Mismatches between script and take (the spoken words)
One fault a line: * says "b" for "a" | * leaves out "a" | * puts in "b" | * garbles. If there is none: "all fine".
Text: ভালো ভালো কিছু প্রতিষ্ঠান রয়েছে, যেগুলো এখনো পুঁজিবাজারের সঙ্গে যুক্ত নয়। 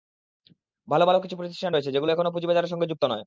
all fine